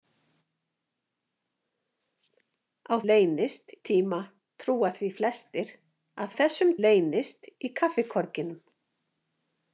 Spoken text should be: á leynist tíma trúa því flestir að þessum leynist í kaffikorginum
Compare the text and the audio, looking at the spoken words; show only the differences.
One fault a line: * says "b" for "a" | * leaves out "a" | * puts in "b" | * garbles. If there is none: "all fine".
all fine